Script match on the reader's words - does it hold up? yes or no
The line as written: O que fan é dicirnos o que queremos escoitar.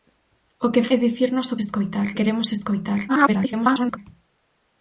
no